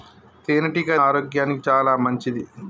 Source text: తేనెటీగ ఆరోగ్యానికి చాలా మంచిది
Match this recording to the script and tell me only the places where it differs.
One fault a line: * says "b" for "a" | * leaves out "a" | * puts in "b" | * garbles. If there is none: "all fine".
all fine